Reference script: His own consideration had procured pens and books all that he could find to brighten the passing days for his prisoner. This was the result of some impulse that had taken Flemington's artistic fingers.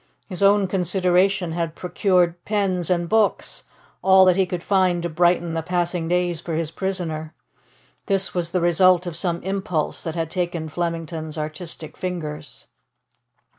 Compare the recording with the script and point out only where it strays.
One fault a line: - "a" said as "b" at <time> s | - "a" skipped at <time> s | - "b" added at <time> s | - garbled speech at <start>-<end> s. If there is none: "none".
none